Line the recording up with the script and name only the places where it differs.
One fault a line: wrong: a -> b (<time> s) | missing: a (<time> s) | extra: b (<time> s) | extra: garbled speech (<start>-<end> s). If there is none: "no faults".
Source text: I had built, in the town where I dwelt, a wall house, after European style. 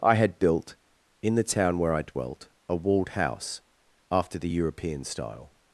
wrong: wall -> walled (2.8 s)
extra: the (4.4 s)